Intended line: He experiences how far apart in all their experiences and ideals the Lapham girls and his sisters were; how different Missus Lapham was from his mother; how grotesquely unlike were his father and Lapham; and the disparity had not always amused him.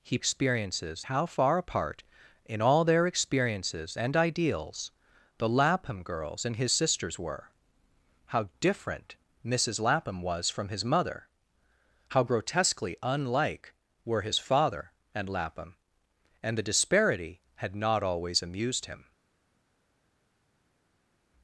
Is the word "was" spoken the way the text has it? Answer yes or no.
yes